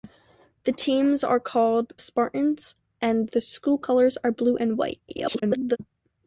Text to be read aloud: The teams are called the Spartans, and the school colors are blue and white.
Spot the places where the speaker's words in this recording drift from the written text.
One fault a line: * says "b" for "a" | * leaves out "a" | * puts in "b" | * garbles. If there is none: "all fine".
* leaves out "the"
* garbles